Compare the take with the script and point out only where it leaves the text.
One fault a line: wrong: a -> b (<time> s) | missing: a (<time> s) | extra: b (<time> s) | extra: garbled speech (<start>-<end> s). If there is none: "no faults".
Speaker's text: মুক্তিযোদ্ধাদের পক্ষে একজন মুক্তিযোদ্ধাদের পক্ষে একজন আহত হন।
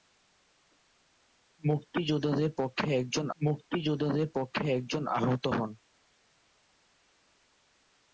no faults